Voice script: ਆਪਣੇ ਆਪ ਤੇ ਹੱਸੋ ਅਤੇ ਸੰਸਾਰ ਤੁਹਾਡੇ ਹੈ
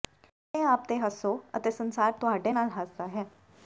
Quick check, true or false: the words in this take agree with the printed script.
false